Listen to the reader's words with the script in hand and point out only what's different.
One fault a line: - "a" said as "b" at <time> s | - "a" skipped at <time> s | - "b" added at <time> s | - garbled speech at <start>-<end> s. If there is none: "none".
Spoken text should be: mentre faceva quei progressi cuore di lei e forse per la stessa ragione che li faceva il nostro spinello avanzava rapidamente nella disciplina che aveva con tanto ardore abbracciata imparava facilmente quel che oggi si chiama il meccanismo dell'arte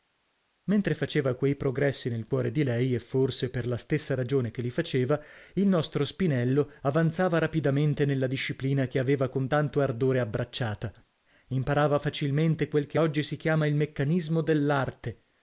- "nel" added at 2.1 s